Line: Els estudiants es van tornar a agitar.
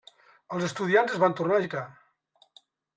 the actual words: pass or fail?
pass